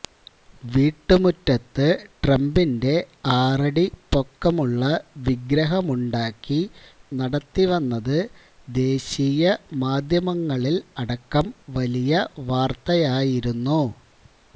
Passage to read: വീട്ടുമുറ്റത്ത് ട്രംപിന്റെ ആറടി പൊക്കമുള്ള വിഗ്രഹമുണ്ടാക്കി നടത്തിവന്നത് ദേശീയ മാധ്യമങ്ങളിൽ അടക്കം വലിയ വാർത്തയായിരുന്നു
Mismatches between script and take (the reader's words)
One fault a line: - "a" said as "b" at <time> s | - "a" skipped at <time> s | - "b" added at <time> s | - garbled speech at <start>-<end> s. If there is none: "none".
none